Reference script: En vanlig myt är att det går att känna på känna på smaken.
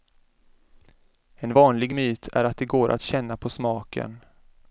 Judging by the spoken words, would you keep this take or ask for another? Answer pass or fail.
fail